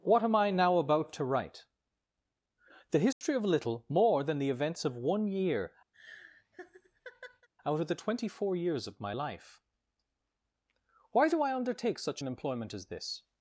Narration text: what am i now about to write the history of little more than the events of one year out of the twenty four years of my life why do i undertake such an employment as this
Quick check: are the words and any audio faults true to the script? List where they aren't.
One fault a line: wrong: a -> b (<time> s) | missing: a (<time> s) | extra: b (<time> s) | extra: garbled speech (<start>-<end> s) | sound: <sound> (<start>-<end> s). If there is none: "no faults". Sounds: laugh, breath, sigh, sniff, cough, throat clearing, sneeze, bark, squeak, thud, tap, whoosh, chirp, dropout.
sound: dropout (3.1-3.2 s)
sound: laugh (5.9-7.5 s)